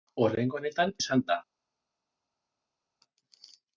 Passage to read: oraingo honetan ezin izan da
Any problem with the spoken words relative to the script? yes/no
yes